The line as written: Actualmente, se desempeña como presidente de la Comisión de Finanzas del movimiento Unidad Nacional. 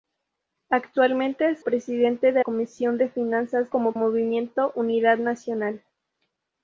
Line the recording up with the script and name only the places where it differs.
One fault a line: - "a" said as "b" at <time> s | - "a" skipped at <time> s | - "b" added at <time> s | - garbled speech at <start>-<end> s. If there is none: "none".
- "se desempeña como" skipped at 1.6 s
- "la" skipped at 2.4 s
- "del" said as "como" at 3.7 s